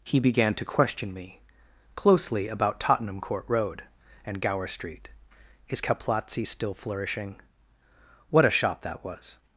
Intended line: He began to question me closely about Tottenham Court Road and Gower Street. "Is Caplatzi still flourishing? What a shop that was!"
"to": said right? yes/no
yes